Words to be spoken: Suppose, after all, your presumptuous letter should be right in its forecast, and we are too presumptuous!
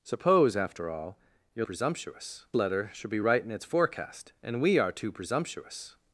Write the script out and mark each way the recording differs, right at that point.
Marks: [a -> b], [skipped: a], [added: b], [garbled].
Suppose, after all, your presumptuous letter should be right in its forecast, and we are too presumptuous!